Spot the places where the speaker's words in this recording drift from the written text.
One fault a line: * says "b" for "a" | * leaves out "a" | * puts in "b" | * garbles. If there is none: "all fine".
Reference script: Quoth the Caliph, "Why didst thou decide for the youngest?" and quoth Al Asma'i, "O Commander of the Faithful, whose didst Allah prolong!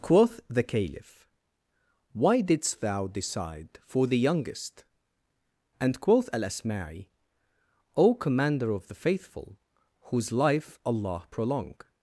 * says "life" for "didst"